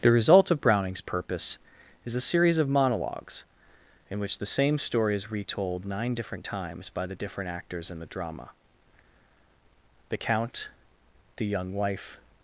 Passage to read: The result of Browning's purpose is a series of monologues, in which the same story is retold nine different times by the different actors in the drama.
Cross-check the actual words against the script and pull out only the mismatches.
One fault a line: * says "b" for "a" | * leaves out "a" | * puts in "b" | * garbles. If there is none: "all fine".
* puts in "The count the young wife"